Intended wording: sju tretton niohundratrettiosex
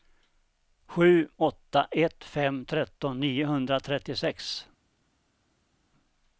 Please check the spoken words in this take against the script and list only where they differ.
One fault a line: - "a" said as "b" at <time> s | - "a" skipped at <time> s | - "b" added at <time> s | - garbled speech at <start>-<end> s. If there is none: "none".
- "åtta ett fem" added at 1.4 s